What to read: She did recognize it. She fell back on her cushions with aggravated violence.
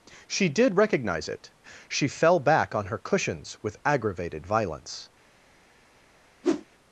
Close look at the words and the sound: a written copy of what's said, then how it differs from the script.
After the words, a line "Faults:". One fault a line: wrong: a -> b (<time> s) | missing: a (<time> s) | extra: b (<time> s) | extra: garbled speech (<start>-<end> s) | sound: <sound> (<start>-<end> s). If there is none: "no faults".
She did recognize it. She fell back on her cushions with aggravated violence.
Faults:
sound: whoosh (6.4-6.7 s)